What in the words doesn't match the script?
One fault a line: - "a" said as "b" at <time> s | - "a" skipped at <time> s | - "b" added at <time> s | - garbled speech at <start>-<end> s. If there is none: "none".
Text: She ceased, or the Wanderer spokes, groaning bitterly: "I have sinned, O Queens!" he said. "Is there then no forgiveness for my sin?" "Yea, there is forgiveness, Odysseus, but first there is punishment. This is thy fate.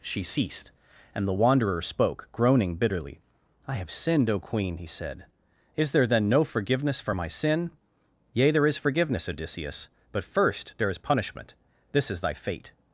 - "or" said as "and" at 1.1 s
- "spokes" said as "spoke" at 1.8 s
- "Queens" said as "Queen" at 4.4 s